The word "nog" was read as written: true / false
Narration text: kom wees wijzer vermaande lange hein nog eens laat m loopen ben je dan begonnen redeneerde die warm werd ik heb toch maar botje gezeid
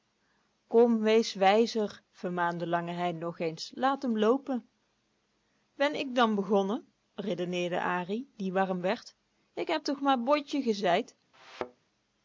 true